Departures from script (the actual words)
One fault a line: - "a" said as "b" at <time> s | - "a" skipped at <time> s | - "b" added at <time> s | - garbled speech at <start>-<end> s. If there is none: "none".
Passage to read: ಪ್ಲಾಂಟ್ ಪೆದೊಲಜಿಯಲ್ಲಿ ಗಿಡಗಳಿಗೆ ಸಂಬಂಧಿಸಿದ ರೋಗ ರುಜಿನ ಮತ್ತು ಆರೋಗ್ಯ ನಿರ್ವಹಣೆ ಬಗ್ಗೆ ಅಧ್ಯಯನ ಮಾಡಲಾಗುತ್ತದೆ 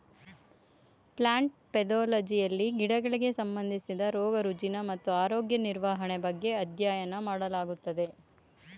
none